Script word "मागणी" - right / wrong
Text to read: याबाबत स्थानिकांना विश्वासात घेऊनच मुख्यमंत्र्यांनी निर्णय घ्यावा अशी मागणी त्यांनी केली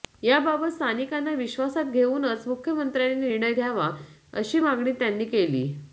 right